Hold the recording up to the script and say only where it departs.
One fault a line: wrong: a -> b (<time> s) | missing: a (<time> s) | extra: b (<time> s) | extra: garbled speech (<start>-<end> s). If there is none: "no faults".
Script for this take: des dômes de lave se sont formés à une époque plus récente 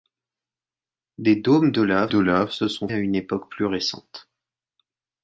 extra: de lave (2.1 s)
missing: formés (2.9 s)